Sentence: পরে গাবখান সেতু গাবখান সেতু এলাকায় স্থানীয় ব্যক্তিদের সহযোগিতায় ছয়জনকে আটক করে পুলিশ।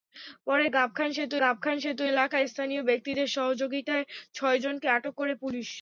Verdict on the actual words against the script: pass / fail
pass